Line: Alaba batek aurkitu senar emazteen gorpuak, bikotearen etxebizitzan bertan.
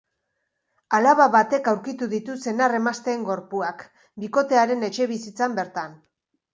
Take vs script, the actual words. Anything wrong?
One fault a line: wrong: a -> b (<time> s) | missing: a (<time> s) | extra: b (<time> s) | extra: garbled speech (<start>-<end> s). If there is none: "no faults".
extra: ditu (2.1 s)